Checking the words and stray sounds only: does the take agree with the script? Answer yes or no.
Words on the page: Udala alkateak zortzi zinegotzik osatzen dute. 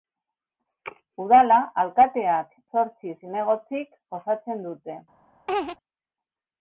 no